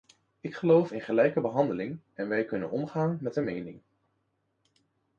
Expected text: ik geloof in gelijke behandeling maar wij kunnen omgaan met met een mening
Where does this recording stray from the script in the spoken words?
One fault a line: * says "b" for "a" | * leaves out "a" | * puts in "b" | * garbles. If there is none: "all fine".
* says "en" for "maar"
* leaves out "met"